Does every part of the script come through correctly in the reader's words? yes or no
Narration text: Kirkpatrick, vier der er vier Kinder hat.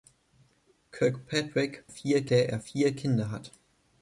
yes